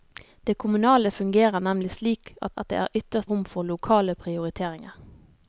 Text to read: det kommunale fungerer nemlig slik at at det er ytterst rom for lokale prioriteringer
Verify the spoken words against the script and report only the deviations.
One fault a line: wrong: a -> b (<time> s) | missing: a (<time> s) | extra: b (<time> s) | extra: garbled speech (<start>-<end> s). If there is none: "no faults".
no faults